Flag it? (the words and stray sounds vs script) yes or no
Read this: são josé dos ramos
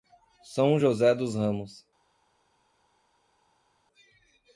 no